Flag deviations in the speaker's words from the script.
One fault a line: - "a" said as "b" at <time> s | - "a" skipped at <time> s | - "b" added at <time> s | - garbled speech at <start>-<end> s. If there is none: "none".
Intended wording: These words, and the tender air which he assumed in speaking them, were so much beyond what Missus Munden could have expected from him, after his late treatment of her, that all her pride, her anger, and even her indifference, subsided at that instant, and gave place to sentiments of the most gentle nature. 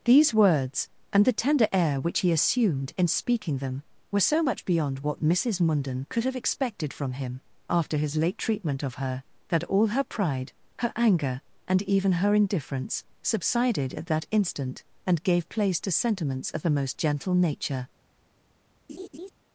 none